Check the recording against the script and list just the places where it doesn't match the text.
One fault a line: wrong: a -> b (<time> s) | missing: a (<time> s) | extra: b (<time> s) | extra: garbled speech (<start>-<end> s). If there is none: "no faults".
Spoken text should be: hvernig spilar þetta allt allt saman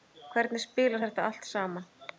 missing: allt (1.5 s)